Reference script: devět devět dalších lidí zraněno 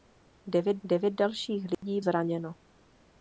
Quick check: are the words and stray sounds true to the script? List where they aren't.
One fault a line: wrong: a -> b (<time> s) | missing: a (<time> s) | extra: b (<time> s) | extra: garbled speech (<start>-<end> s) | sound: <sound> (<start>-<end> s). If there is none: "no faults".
sound: dropout (1.7-1.8 s)